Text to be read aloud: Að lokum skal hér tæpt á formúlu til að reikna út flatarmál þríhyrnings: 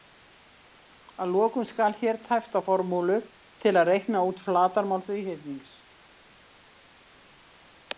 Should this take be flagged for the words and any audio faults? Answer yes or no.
no